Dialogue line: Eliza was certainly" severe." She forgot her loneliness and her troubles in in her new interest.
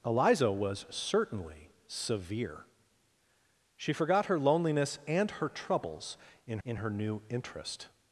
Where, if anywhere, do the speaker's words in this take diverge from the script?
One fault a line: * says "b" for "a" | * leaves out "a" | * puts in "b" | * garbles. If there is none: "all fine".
all fine